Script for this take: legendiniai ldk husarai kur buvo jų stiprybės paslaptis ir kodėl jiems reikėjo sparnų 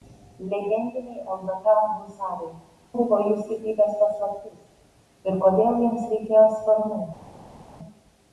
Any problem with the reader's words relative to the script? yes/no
yes